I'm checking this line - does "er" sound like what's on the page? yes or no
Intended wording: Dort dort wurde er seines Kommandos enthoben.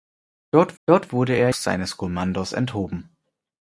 yes